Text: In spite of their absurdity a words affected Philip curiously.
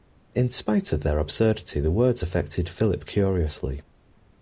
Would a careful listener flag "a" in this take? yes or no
yes